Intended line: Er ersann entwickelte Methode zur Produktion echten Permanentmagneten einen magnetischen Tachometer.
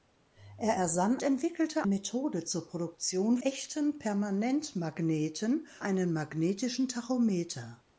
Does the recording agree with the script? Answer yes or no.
yes